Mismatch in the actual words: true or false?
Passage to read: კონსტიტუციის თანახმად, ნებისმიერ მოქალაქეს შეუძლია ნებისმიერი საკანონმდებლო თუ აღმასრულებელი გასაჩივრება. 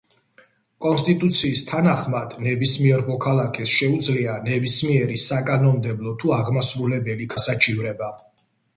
false